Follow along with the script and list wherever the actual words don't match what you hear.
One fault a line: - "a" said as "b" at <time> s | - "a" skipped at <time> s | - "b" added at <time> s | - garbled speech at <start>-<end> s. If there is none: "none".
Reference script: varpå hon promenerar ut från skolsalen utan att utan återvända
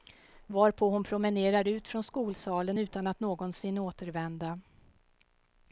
- "utan" said as "någonsin" at 3.2 s